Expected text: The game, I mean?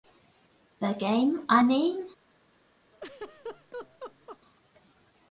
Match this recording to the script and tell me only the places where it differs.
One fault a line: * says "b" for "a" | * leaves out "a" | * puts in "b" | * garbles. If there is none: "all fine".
all fine